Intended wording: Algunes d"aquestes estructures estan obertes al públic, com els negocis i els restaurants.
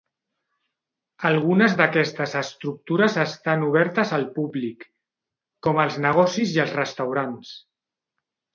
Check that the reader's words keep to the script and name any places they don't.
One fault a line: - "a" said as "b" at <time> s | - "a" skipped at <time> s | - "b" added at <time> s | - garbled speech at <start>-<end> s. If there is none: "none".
none